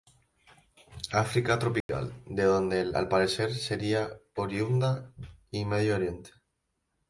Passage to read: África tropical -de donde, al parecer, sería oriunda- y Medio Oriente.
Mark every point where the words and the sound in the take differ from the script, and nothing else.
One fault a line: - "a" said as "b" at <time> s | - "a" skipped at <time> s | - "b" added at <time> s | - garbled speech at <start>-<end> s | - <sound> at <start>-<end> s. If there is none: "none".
- dropout at 1.8-1.9 s